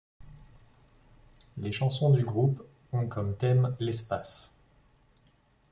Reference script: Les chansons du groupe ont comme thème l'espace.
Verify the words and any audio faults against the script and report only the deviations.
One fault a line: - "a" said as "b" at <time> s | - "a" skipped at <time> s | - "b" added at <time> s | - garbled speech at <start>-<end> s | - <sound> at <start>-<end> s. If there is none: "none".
none